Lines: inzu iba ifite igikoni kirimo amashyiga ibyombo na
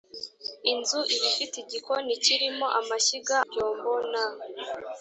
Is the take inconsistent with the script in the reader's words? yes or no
no